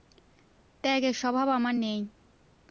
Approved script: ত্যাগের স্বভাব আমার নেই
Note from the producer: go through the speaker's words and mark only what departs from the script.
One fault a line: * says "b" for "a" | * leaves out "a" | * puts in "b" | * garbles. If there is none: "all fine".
all fine